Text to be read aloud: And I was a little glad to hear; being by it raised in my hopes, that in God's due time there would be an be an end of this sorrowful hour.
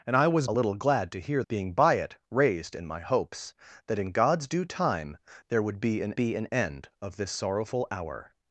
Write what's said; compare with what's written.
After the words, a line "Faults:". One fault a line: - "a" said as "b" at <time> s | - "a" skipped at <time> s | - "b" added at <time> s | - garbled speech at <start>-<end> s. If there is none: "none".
And I was a little glad to hear; being by it raised in my hopes, that in God's due time there would be an be an end of this sorrowful hour.
Faults:
none